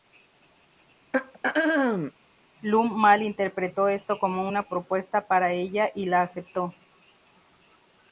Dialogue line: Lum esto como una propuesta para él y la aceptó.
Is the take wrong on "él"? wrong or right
wrong